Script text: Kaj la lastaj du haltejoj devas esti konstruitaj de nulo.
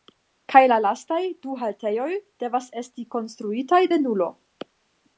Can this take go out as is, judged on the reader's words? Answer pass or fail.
pass